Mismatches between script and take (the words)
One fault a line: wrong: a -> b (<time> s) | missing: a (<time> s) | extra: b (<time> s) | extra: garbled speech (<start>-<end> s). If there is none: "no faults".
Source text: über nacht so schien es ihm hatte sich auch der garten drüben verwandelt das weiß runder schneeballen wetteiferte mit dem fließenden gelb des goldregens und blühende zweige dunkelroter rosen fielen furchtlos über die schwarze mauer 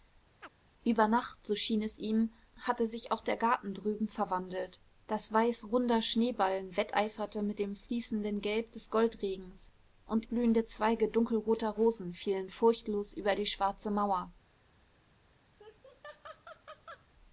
no faults